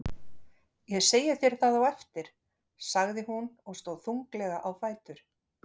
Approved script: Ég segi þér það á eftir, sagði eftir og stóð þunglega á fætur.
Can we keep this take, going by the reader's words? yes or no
no